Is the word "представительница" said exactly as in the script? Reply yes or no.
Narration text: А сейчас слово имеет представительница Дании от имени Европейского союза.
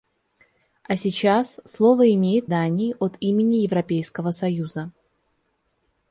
no